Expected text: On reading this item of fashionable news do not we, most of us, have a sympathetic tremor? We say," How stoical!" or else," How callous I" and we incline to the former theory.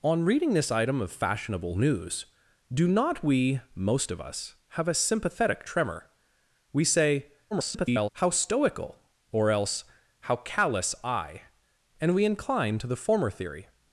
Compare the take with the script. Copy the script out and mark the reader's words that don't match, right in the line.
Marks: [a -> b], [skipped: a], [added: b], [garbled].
On reading this item of fashionable news do not we, most of us, have a sympathetic tremor? We say," [garbled] How stoical!" or else," How callous I" and we incline to the former theory.